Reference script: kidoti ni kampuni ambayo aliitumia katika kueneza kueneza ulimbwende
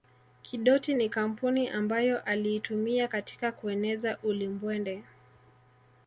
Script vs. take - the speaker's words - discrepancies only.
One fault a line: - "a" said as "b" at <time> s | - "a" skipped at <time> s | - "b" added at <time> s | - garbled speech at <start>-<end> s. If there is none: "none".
- "kueneza" skipped at 4.2 s